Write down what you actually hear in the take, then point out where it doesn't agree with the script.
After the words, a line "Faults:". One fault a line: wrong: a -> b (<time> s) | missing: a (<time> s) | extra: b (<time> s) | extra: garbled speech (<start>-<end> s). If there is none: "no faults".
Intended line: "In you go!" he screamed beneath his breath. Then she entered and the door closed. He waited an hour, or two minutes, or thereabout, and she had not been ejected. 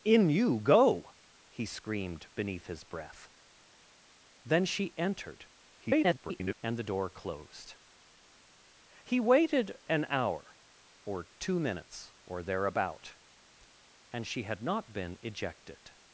"In you go!" he screamed beneath his breath. Then she entered [garbled] and the door closed. He waited an hour, or two minutes, or thereabout, and she had not been ejected.
Faults:
extra: garbled speech (5.8-6.6 s)